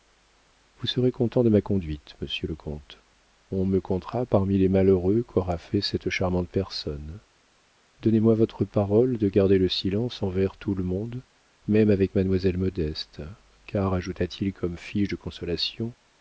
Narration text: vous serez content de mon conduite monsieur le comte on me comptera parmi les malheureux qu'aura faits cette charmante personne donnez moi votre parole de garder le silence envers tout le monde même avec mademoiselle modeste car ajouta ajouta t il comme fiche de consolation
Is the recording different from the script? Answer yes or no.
yes